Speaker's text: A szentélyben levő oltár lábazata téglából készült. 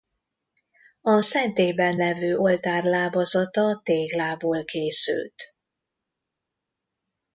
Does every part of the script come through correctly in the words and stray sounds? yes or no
yes